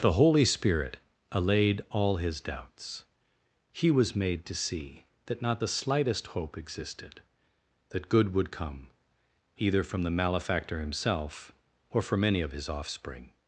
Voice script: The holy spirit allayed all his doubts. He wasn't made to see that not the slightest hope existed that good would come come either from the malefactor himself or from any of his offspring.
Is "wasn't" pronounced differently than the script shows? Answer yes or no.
yes